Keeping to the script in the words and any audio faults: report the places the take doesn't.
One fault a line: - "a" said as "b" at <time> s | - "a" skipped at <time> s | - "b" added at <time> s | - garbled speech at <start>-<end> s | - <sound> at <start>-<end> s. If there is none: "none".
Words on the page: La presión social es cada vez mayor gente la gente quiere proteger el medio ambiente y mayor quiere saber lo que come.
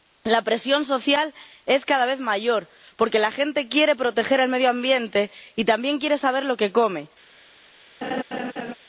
- "gente" said as "porque" at 3.0 s
- "mayor" said as "también" at 5.7 s
- laugh at 8.0-8.7 s